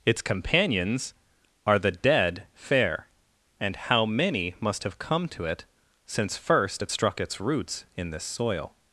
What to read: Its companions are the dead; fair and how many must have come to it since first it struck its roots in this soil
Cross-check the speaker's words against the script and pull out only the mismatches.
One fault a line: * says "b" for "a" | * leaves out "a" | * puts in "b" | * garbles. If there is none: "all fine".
all fine